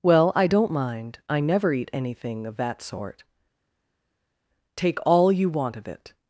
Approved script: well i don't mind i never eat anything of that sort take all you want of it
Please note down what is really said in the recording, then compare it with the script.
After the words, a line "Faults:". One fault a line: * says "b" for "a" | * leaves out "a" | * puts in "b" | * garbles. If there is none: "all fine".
well i don't mind i never eat anything of that sort take all you want of it
Faults:
all fine